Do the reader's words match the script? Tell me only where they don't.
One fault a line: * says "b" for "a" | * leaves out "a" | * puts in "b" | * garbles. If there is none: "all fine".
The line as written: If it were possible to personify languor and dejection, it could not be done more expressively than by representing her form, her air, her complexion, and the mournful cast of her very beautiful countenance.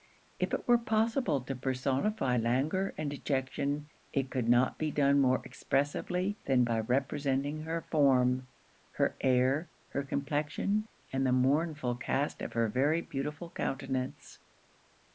all fine